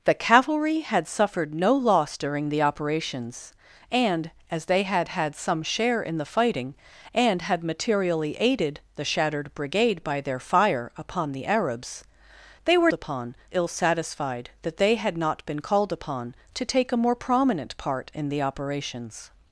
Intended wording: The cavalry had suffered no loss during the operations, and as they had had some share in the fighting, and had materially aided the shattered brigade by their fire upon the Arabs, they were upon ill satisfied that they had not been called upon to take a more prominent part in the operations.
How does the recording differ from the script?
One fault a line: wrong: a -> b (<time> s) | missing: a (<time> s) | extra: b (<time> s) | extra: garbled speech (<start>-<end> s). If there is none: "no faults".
no faults